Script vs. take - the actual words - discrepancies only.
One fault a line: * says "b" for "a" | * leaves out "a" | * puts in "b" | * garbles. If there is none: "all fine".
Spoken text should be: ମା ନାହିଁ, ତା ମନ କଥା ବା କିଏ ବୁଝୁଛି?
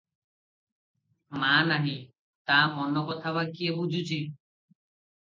all fine